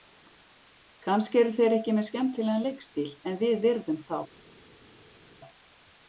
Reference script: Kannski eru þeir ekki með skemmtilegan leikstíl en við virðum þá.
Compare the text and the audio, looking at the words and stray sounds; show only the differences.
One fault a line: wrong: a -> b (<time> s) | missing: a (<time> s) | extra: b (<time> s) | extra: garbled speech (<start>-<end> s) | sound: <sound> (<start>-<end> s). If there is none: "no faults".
no faults